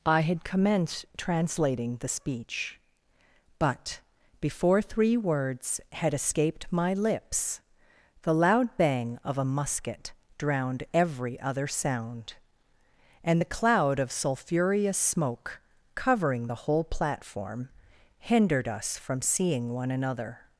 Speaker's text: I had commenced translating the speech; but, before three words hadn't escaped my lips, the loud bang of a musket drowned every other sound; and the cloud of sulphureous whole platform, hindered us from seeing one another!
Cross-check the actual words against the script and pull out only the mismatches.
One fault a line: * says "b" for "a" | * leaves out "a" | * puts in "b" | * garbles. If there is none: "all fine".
* says "had" for "hadn't"
* puts in "smoke covering the"